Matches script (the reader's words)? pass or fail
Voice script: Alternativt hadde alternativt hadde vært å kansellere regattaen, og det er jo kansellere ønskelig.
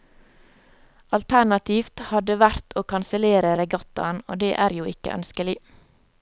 fail